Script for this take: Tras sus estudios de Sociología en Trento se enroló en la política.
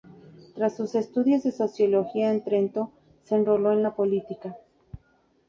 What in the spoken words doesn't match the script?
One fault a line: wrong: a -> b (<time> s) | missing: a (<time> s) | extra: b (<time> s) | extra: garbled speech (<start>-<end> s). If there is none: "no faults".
no faults